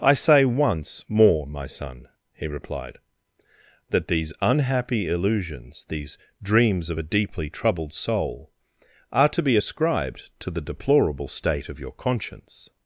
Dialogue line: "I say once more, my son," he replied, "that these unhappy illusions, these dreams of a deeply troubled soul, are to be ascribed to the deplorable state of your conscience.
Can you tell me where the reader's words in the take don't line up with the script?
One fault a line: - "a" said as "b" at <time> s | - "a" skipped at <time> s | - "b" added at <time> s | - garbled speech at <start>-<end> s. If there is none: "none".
none